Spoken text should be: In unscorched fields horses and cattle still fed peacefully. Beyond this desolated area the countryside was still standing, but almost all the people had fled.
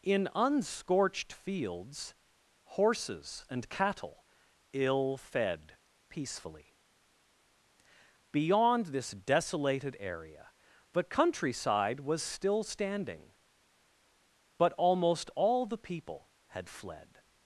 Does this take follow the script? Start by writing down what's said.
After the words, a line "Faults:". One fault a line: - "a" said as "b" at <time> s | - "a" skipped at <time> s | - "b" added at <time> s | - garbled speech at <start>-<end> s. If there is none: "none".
In unscorched fields horses and cattle ill fed peacefully. Beyond this desolated area the countryside was still standing, but almost all the people had fled.
Faults:
- "still" said as "ill" at 4.7 s